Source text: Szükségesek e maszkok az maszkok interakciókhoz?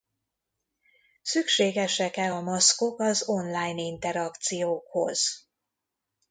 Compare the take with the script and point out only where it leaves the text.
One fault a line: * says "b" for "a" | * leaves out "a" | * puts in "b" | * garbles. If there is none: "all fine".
* puts in "a"
* says "online" for "maszkok"